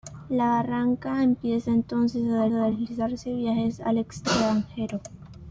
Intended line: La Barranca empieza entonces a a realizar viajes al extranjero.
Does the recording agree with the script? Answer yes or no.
yes